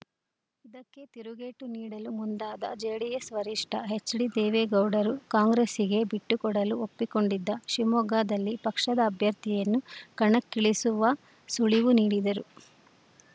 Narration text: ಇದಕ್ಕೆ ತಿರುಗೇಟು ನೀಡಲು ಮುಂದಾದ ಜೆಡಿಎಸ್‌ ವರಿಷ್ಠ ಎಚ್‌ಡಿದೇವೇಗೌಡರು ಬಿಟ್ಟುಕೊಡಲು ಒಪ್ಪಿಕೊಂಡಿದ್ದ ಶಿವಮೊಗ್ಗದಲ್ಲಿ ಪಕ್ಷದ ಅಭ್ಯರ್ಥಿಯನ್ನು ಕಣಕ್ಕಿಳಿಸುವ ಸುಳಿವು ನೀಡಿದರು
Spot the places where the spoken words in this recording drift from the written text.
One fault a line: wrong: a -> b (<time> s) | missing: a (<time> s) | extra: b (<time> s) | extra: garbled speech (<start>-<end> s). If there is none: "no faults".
extra: ಕಾಂಗ್ರೆಸ್ಸಿಗೆ (5.3 s)